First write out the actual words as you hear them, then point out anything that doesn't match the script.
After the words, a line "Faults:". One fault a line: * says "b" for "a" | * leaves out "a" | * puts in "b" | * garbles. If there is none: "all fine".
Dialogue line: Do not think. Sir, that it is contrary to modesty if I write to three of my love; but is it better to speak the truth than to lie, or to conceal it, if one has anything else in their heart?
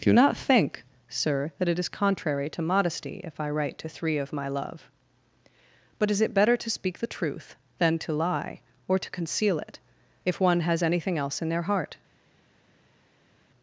Do not think. Sir, that it is contrary to modesty if I write to three of my love; but is it better to speak the truth than to lie, or to conceal it, if one has anything else in their heart?
Faults:
all fine